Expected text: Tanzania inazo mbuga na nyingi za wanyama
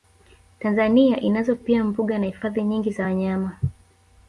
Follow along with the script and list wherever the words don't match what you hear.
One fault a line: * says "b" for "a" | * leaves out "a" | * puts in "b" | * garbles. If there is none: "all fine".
* puts in "pia"
* puts in "hifadhi"